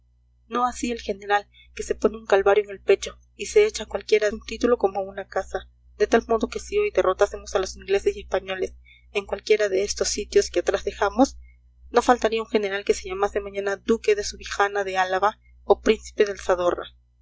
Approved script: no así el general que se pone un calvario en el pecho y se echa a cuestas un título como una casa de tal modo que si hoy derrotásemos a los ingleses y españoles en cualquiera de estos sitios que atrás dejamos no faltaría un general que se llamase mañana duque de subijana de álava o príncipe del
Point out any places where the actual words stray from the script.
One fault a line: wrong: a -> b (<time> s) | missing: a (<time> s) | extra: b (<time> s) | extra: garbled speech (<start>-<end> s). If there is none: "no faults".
wrong: cuestas -> cualquiera (3.9 s)